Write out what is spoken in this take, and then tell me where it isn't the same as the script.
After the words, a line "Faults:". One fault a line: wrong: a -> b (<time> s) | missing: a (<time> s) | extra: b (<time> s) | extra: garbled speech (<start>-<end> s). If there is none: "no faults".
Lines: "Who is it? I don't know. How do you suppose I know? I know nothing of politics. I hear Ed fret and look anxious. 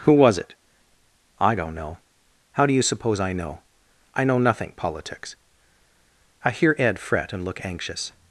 "Who was it? I don't know. How do you suppose I know? I know nothing politics. I hear Ed fret and look anxious.
Faults:
wrong: is -> was (0.1 s)
missing: of (4.7 s)